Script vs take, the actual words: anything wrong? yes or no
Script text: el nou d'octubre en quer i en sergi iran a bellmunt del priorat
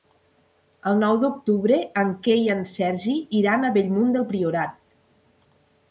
no